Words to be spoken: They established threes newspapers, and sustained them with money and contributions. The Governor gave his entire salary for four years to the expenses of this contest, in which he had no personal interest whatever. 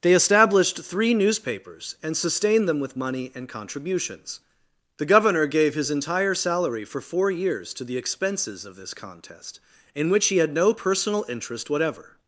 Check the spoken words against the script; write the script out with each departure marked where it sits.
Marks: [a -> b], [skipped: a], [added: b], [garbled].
They established [threes -> three] newspapers, and sustained them with money and contributions. The Governor gave his entire salary for four years to the expenses of this contest, in which he had no personal interest whatever.